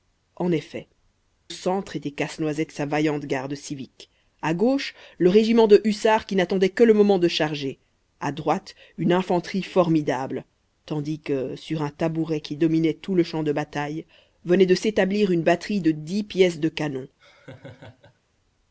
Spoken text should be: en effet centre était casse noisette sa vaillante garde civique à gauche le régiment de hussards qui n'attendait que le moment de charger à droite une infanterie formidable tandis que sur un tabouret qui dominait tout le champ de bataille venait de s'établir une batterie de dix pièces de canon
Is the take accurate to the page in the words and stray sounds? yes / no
no